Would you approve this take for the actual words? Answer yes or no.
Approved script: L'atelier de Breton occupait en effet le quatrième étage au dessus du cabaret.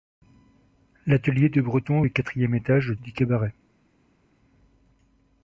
no